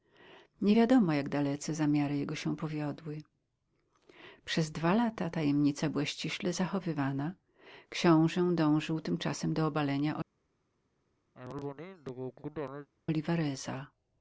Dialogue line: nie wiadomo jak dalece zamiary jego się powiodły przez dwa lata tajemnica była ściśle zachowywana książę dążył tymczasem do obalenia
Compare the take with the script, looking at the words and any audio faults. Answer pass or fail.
fail